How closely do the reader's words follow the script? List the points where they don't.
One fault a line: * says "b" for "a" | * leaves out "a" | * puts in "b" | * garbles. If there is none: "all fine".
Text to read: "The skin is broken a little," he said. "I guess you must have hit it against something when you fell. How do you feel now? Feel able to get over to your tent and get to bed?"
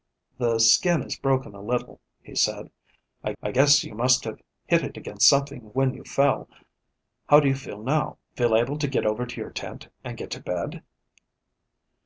* puts in "I"